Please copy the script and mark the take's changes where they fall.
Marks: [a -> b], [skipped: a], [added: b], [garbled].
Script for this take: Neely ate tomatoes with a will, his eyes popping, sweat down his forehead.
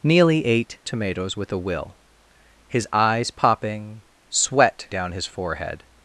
Neely ate tomatoes with a will, his eyes popping, sweat down his forehead.